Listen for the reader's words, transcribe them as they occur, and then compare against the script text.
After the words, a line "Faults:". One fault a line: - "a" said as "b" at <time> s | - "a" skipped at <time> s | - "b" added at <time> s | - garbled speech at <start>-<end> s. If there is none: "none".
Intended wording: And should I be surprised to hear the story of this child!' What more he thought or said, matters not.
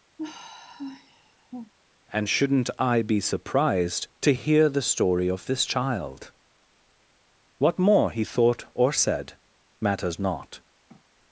And shouldn't I be surprised to hear the story of this child!' What more he thought or said, matters not.
Faults:
- "should" said as "shouldn't" at 2.3 s